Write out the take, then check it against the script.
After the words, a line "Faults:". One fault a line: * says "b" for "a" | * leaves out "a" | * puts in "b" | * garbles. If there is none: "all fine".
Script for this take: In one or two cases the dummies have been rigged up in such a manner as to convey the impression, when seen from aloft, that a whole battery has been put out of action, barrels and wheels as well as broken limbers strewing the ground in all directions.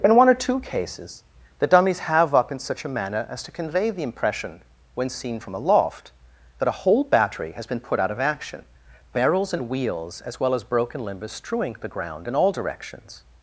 In one or two cases the dummies have up in such a manner as to convey the impression, when seen from aloft, that a whole battery has been put out of action, barrels and wheels as well as broken limbers strewing the ground in all directions.
Faults:
* leaves out "been rigged"